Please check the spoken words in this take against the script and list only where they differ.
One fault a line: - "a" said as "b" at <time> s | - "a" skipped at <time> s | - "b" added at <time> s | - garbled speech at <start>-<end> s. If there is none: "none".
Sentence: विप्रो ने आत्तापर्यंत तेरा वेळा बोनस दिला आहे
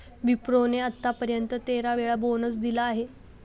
none